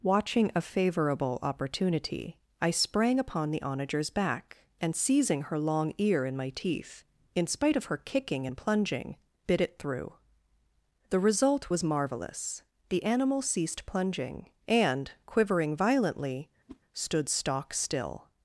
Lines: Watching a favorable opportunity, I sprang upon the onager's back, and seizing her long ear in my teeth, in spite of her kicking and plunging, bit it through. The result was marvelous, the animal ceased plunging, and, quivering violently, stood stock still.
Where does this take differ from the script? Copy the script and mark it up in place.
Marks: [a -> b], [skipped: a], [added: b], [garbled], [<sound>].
Watching a favorable opportunity, I sprang upon the onager's back, and seizing her long ear in my teeth, in spite of her kicking and plunging, bit it through. The result was marvelous, the animal ceased plunging, and, quivering violently, [whoosh] stood stock still.